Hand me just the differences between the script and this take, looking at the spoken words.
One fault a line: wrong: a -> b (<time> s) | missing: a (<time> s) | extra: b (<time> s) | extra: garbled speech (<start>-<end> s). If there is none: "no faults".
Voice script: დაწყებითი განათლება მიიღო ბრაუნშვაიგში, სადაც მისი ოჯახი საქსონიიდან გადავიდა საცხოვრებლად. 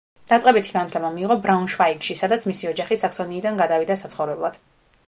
no faults